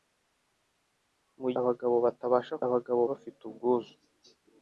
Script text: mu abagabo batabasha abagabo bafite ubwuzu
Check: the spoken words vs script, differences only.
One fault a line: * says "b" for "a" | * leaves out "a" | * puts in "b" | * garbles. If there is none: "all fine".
all fine